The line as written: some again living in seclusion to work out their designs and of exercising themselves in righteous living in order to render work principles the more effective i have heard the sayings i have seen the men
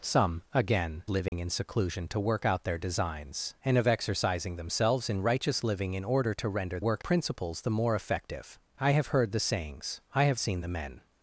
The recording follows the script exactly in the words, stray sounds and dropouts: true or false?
false